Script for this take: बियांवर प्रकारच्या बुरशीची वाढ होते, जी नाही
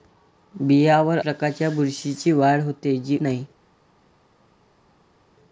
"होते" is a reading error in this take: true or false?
false